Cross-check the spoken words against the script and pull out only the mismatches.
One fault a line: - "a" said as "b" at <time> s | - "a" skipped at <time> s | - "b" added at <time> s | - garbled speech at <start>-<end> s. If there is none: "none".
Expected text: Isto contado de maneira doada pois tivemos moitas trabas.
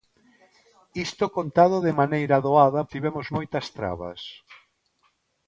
- "pois" skipped at 2.8 s